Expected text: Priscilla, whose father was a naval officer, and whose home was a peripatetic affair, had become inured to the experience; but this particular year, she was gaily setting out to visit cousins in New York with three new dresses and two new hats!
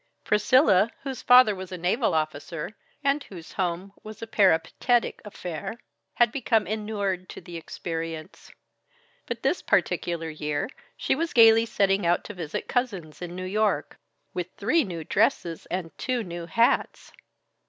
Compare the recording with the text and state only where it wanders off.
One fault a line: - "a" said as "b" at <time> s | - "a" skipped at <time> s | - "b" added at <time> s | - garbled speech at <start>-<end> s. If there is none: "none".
none